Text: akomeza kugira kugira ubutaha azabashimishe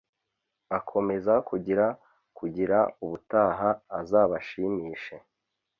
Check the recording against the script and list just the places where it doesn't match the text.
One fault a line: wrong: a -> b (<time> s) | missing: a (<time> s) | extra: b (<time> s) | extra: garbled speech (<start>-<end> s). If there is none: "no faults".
no faults